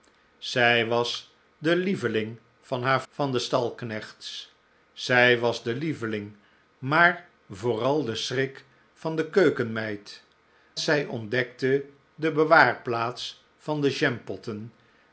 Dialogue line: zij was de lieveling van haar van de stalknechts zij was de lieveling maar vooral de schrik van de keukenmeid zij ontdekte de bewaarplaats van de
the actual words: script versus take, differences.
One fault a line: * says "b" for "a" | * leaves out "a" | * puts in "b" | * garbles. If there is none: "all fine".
all fine